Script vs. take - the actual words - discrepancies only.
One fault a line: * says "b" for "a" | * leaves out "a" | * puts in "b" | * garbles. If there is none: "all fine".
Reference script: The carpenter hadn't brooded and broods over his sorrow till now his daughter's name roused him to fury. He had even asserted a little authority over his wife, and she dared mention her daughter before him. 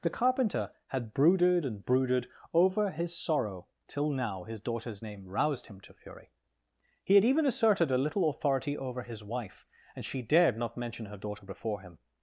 * says "had" for "hadn't"
* says "brooded" for "broods"
* puts in "not"